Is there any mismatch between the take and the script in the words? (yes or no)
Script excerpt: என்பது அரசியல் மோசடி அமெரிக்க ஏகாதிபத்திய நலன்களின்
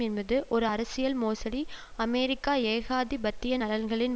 yes